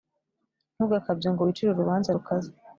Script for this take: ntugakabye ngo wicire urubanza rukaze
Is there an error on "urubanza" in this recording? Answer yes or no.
no